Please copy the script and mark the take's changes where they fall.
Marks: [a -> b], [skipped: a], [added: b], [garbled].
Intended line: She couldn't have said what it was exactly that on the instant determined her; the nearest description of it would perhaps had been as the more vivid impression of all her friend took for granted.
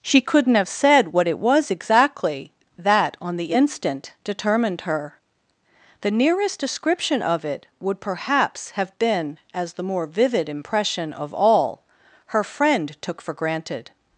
She couldn't have said what it was exactly that on the instant determined her; the nearest description of it would perhaps [had -> have] been as the more vivid impression of all her friend took for granted.